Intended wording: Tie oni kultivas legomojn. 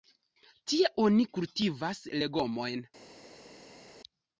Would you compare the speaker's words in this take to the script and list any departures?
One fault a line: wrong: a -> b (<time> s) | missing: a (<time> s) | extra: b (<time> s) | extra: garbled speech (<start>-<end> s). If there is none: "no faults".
no faults